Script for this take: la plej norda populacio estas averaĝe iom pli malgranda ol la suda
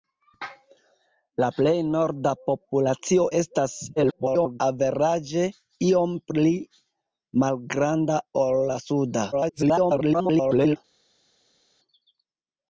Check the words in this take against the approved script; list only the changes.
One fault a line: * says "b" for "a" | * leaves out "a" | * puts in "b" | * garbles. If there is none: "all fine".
* garbles
* garbles